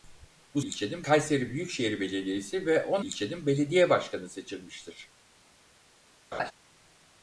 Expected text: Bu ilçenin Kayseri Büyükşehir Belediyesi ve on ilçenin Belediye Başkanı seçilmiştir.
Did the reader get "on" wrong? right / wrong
right